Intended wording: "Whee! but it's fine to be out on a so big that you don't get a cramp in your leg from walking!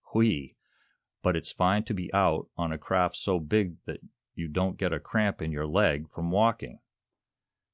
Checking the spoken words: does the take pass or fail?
fail